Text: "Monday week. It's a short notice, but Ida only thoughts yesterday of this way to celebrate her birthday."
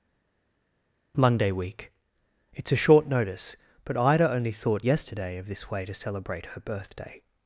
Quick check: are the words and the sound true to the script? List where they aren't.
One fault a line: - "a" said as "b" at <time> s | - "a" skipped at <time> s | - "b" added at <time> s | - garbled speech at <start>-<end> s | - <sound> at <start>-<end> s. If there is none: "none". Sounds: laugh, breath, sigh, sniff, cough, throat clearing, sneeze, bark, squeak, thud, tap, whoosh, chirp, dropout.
- "thoughts" said as "thought" at 4.5 s